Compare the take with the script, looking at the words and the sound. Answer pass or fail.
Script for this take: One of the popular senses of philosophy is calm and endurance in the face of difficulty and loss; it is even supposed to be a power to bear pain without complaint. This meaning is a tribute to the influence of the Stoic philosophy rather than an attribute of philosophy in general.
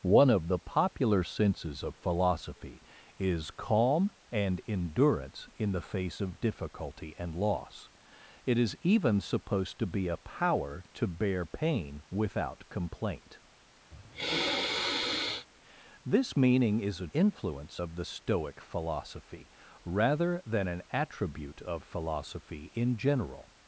fail